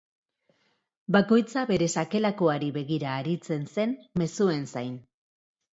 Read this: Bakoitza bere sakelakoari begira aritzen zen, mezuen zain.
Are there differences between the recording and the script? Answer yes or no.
no